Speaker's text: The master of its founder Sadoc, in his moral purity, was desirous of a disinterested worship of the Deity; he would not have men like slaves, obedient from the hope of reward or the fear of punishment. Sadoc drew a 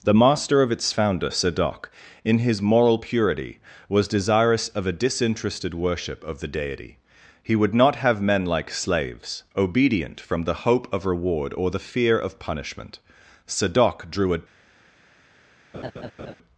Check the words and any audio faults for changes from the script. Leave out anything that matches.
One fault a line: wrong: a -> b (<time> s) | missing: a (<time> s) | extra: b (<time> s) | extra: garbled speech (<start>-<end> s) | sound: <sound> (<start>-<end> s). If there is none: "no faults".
sound: laugh (15.7-16.4 s)